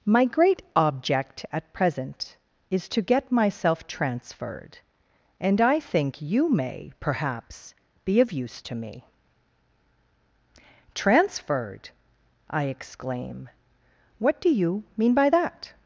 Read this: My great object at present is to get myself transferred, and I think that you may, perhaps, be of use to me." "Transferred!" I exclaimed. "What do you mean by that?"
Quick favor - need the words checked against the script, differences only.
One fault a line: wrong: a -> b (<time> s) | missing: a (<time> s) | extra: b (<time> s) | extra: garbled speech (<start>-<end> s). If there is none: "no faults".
missing: that (6.2 s)
wrong: exclaimed -> exclaim (12.6 s)